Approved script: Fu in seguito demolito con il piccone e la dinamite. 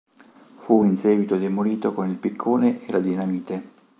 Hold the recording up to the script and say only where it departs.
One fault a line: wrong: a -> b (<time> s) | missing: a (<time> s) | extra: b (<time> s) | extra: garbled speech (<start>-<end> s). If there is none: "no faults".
no faults